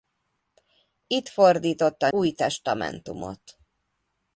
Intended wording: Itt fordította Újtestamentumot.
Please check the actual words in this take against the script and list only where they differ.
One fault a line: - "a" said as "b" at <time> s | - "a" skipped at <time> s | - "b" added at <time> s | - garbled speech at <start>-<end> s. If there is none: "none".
none